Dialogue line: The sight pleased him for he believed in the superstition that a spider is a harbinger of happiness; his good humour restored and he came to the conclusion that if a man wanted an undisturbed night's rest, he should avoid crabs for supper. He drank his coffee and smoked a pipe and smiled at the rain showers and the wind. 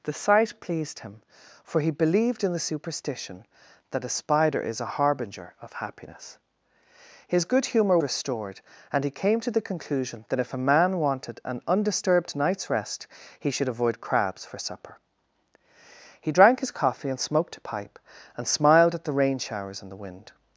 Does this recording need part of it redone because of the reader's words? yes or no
no